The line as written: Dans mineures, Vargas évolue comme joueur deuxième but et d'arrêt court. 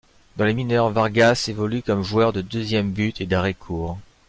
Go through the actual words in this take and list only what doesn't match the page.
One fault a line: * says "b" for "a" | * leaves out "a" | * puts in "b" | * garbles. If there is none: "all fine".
* puts in "les"
* puts in "de"